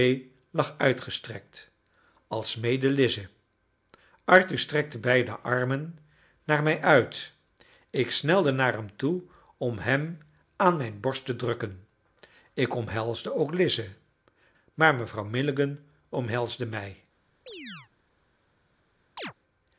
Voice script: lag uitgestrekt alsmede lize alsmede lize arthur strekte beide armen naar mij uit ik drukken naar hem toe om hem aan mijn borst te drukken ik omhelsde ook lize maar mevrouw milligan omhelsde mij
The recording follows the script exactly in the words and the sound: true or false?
false